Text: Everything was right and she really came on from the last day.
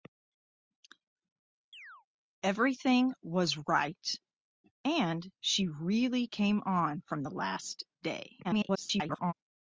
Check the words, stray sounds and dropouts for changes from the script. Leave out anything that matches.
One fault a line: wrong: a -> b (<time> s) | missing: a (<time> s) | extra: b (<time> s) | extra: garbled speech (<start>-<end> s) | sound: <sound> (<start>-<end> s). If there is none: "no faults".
sound: chirp (1.7-2.1 s)
extra: garbled speech (8.4-9.3 s)